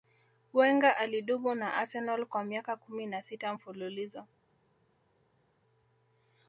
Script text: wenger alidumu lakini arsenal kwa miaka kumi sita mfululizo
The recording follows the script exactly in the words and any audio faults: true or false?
false